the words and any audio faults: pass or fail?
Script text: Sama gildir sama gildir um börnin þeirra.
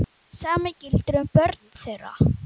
fail